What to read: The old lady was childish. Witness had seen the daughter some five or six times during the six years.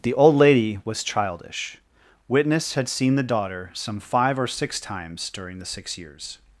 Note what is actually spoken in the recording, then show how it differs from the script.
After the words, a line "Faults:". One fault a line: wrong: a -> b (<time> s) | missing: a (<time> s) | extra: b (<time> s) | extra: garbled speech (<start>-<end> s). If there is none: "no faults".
The old lady was childish. Witness had seen the daughter some five or six times during the six years.
Faults:
no faults